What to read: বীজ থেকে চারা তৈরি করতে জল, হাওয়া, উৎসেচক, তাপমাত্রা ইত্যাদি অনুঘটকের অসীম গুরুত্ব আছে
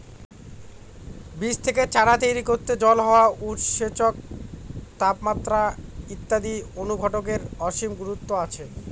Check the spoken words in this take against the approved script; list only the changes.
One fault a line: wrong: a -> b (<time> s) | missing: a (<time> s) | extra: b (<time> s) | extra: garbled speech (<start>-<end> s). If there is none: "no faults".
no faults